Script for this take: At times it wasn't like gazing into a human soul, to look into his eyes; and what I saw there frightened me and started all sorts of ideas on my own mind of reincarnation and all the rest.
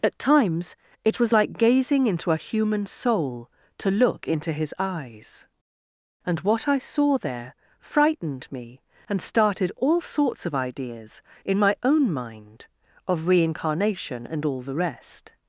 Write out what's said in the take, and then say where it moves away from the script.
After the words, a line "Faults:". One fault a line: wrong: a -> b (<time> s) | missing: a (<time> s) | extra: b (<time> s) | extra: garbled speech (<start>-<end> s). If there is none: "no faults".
At times it was like gazing into a human soul, to look into his eyes; and what I saw there frightened me and started all sorts of ideas in my own mind of reincarnation and all the rest.
Faults:
wrong: wasn't -> was (1.2 s)
wrong: on -> in (11.4 s)